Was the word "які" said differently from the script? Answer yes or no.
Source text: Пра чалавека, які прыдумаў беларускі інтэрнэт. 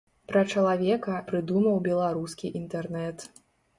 yes